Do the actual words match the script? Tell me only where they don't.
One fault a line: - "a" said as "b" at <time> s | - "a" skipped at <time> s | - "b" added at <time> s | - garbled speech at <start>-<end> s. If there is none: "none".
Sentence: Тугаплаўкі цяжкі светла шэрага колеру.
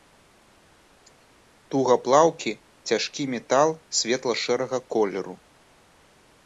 - "метал" added at 3.4 s